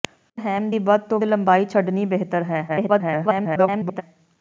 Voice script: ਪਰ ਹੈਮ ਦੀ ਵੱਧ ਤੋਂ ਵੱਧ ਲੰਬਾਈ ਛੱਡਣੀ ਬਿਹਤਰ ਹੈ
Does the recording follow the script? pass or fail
fail